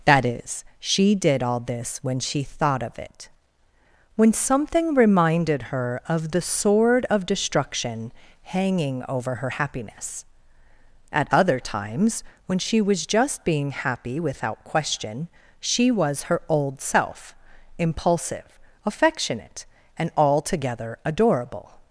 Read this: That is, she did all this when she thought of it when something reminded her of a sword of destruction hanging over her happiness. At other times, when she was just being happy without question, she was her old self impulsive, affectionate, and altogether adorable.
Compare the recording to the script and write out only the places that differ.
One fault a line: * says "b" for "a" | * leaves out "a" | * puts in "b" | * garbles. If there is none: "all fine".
* says "the" for "a"